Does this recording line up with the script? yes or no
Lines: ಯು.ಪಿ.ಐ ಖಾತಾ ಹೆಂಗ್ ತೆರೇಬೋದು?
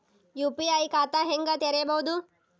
yes